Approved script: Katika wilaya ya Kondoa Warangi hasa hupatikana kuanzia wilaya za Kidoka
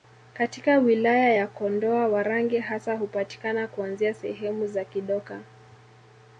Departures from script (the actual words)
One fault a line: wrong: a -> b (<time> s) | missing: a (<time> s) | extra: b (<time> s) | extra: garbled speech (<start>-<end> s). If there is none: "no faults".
wrong: wilaya -> sehemu (4.1 s)